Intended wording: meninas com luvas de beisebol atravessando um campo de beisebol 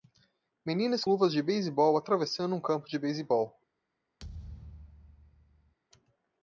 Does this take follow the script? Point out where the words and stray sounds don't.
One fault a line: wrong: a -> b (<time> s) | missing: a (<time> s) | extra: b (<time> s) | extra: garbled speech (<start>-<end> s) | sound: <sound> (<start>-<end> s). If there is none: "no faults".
missing: com (1.1 s)
sound: thud (4.2-5.7 s)